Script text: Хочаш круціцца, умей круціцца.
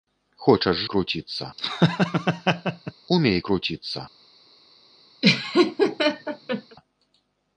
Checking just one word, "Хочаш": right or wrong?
right